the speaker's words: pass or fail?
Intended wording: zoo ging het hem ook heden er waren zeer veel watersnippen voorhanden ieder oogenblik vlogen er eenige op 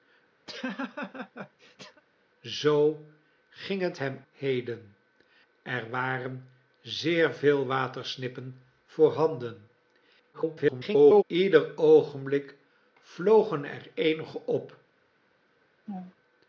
fail